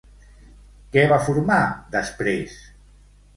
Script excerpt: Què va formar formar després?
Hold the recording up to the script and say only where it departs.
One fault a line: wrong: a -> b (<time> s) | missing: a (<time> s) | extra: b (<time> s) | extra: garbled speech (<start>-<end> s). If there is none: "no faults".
missing: formar (1.6 s)